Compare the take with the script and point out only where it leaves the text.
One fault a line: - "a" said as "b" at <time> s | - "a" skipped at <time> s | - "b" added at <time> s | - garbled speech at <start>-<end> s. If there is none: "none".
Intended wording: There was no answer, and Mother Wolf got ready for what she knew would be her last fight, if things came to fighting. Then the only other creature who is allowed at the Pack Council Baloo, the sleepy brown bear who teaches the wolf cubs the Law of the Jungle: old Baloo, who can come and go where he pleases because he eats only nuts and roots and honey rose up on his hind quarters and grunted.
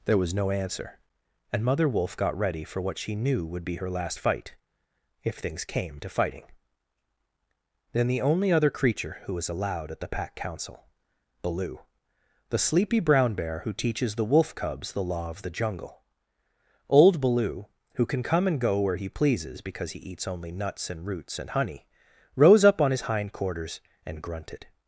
- "is" said as "was" at 9.3 s